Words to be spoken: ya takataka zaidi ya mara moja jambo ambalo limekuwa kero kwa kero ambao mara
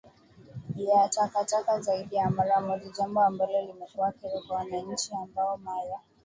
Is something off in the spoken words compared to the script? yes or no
yes